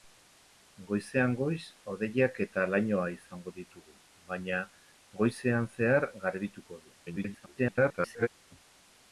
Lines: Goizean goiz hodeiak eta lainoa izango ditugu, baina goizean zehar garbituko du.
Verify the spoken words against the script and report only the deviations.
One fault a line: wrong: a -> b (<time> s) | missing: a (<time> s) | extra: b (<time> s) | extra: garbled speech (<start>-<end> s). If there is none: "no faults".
extra: garbled speech (7.1-8.3 s)